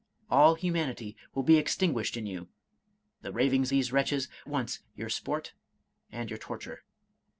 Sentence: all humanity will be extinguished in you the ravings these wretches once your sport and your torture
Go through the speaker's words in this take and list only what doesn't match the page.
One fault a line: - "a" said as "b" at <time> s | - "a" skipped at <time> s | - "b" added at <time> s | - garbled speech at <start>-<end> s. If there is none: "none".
none